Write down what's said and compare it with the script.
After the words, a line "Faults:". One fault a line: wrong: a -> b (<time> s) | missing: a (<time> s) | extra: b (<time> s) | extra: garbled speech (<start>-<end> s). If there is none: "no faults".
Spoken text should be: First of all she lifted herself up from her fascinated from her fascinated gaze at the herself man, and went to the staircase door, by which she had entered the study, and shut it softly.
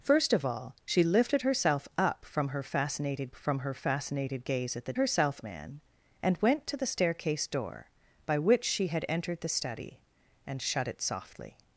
First of all she lifted herself up from her fascinated from her fascinated gaze at the herself man, and went to the staircase door, by which she had entered the study, and shut it softly.
Faults:
no faults